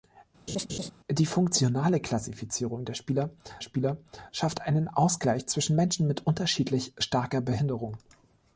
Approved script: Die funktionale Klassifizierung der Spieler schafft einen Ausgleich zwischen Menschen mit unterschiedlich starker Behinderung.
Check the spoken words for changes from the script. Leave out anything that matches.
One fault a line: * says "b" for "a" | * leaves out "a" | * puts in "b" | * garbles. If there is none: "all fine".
* puts in "Spieler"